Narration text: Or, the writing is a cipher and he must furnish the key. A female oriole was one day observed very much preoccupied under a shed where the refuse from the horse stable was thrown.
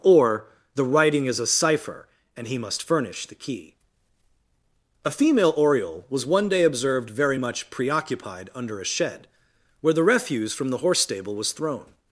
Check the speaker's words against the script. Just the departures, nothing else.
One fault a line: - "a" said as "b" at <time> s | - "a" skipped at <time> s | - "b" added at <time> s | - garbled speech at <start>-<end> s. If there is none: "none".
none